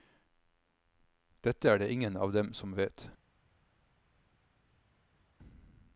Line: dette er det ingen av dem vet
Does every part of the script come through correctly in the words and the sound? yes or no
no